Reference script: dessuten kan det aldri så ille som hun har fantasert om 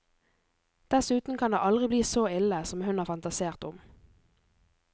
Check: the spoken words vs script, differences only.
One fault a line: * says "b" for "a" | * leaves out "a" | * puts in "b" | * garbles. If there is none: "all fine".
* puts in "bli"